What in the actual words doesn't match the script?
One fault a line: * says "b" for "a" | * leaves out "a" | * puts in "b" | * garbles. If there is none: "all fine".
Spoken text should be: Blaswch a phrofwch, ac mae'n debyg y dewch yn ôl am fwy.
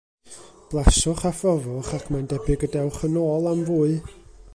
all fine